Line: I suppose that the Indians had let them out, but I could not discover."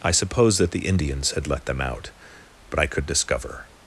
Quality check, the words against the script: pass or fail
fail